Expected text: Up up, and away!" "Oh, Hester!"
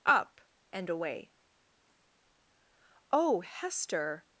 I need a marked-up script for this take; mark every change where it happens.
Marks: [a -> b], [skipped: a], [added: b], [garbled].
Up [skipped: up,] and away!" "Oh, Hester!"